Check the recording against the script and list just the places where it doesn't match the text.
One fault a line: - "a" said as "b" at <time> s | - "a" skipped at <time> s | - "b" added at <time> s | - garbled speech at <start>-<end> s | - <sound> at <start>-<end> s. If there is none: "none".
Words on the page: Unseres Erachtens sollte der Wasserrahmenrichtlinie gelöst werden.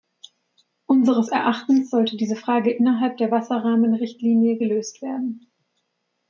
- "diese Frage innerhalb" added at 2.2 s